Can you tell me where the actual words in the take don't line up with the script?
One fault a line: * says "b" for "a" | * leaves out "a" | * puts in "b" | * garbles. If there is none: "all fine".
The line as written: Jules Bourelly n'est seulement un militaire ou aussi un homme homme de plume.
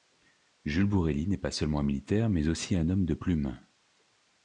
* puts in "pas"
* says "mais" for "ou"
* leaves out "homme"